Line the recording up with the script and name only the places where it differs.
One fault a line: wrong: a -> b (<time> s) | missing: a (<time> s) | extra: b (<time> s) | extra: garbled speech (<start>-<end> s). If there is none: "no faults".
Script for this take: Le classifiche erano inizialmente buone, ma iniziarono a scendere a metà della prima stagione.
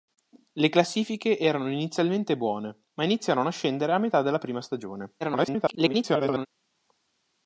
extra: garbled speech (5.2-6.5 s)